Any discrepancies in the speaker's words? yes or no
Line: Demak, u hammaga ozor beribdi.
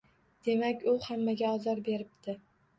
no